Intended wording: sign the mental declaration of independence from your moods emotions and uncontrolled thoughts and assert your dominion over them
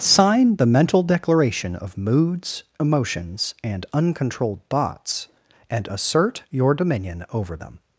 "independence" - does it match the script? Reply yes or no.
no